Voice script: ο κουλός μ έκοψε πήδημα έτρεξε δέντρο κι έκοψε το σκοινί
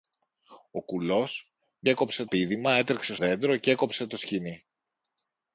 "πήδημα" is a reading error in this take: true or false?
false